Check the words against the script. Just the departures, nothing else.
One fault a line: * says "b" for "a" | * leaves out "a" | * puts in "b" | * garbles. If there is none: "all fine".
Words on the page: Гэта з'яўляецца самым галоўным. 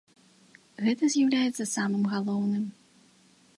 all fine